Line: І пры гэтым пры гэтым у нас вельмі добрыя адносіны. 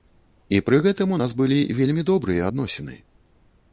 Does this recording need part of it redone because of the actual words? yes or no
yes